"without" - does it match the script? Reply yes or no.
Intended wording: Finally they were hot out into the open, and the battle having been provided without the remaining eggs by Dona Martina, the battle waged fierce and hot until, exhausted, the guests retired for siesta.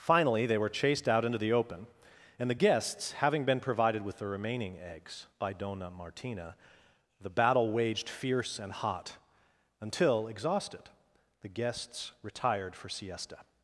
no